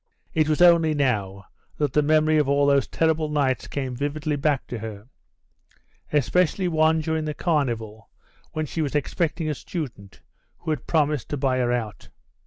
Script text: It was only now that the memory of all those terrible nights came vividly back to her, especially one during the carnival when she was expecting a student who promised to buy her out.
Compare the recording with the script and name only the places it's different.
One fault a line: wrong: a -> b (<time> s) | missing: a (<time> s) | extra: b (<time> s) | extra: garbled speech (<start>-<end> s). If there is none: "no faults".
extra: had (10.7 s)